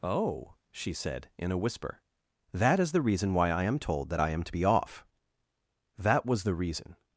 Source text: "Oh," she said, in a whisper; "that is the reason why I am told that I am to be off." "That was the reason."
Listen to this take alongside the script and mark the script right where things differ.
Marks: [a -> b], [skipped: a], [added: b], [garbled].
"Oh," she said, in a whisper; "that is the reason why I am told that I am to be off." "That was the reason."